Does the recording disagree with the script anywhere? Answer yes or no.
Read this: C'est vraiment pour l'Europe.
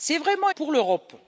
no